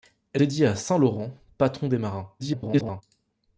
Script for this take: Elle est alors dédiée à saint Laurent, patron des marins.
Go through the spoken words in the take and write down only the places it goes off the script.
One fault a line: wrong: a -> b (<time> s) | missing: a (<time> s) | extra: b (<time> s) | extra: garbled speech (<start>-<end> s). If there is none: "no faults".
missing: est alors (0.4 s)
extra: garbled speech (2.4-3.0 s)